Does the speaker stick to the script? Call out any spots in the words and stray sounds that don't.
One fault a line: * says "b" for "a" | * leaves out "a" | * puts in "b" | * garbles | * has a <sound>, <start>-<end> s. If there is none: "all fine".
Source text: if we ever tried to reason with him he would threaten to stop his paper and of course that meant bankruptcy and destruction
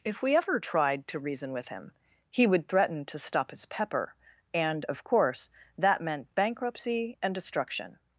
* says "pepper" for "paper"